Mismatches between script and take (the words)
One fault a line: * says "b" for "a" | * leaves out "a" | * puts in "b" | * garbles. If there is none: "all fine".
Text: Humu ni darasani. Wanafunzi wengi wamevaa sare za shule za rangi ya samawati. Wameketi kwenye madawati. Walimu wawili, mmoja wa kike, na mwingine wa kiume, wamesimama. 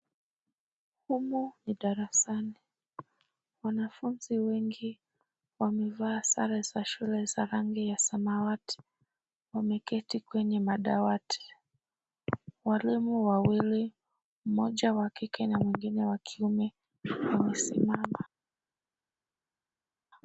all fine